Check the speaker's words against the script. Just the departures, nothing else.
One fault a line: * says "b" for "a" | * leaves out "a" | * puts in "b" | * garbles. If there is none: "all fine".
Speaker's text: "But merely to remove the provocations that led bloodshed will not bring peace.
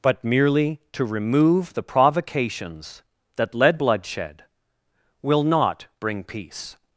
all fine